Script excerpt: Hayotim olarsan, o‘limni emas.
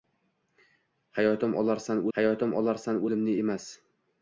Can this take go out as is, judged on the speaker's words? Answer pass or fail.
fail